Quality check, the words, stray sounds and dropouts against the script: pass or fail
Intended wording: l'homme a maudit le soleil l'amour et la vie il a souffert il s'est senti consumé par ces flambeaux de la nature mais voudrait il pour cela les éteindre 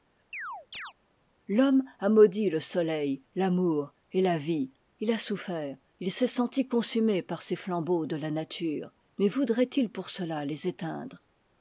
fail